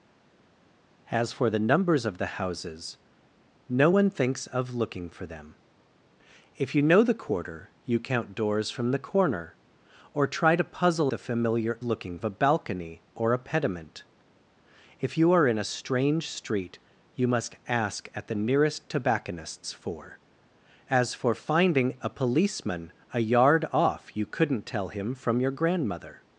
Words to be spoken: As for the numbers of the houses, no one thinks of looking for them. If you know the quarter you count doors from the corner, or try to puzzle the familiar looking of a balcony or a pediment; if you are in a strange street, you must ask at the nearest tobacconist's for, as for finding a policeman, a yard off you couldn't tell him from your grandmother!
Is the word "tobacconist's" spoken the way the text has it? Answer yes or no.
yes